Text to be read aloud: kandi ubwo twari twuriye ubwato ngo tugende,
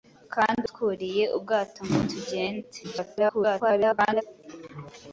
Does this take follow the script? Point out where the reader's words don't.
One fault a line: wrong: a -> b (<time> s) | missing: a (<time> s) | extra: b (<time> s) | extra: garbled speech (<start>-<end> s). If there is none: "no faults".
missing: ubwo twari (0.6 s)
extra: garbled speech (2.8-4.2 s)